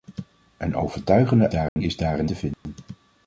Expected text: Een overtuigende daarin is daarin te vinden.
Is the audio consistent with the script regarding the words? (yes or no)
yes